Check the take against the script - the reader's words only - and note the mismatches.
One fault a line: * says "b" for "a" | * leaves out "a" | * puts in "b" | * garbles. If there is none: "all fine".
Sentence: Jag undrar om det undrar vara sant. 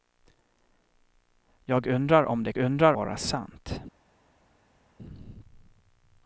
all fine